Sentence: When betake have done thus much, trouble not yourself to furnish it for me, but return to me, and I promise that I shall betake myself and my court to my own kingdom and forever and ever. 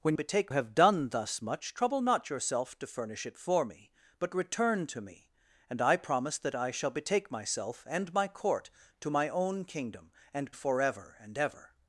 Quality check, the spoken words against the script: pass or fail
pass